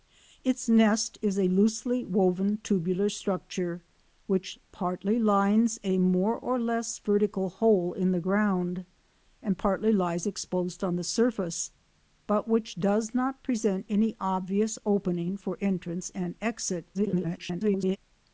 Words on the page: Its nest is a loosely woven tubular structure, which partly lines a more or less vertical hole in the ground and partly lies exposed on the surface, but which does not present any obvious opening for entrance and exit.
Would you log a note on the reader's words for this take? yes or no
yes